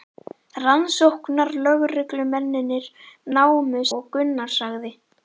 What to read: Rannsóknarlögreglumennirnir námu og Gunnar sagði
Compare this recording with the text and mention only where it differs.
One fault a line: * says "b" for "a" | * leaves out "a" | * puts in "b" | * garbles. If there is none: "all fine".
all fine